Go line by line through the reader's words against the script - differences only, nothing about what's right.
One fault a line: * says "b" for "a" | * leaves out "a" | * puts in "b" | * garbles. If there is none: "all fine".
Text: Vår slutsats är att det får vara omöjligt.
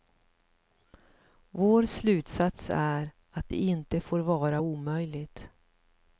* puts in "inte"